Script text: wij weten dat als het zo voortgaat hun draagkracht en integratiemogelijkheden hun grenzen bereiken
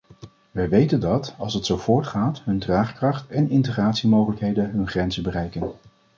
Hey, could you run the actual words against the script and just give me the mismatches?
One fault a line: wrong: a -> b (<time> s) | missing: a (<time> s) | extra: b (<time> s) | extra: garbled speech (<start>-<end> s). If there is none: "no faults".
no faults